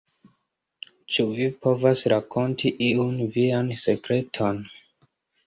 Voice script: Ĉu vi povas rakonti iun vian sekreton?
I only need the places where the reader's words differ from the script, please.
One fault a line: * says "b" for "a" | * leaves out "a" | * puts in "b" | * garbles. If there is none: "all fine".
all fine